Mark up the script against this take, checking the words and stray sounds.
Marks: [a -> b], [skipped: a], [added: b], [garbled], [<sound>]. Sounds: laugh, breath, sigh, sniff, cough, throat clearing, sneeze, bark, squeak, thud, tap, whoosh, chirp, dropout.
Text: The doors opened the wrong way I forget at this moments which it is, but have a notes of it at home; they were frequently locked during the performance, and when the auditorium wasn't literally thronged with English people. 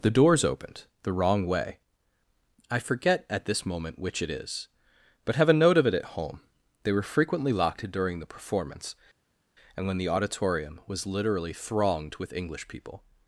The doors opened the wrong way I forget at this [moments -> moment] which it is, but have a [notes -> note] of it at home; they were frequently locked during the performance, and when the auditorium [wasn't -> was] literally thronged with English people.